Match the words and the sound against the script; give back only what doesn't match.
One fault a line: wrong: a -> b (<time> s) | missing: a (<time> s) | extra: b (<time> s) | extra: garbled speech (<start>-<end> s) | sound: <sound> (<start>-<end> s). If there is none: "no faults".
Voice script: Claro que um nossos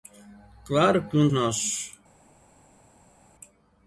no faults